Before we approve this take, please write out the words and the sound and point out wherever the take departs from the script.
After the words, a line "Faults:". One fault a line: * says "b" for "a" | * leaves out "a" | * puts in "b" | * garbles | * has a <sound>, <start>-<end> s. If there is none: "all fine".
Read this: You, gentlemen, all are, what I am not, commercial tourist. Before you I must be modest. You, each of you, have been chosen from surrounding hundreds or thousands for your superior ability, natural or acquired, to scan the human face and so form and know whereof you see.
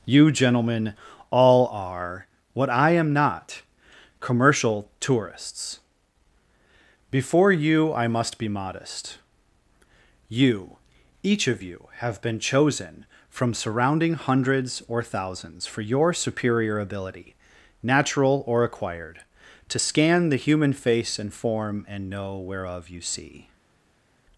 You, gentlemen, all are, what I am not, commercial tourists. Before you I must be modest. You, each of you, have been chosen from surrounding hundreds or thousands for your superior ability, natural or acquired, to scan the human face and form and know whereof you see.
Faults:
* says "tourists" for "tourist"
* leaves out "so"